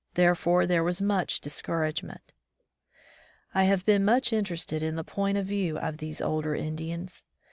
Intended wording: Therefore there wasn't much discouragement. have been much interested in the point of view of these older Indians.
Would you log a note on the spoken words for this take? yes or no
yes